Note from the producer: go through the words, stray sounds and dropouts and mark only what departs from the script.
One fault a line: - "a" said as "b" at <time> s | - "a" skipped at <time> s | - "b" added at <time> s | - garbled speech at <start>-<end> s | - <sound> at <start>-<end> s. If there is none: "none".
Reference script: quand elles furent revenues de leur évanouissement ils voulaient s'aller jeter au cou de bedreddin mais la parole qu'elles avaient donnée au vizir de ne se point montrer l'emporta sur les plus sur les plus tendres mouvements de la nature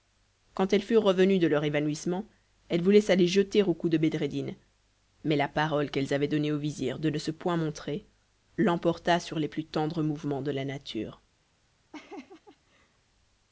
- "ils" said as "elles" at 2.7 s
- "sur les plus" skipped at 9.7 s
- laugh at 11.9-13.0 s